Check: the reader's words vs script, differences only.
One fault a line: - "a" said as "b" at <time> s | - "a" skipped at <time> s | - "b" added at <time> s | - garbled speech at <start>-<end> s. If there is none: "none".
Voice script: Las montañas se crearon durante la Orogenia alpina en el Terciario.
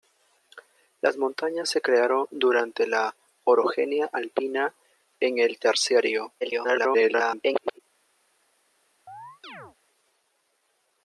- garbled speech at 6.4-7.8 s